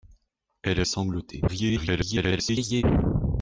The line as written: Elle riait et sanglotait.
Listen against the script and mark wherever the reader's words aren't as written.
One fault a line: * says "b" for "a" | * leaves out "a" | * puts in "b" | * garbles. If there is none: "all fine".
* leaves out "riait"
* garbles